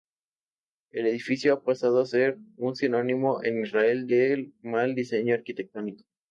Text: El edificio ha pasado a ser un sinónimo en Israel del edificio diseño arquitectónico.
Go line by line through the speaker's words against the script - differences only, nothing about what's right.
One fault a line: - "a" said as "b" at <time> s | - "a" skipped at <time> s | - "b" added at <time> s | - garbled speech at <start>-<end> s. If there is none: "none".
- "edificio" said as "mal" at 4.6 s